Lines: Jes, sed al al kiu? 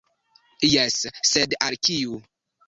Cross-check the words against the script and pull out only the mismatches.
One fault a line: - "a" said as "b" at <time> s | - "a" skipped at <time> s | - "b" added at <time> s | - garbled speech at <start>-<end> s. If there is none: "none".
- "al" skipped at 1.8 s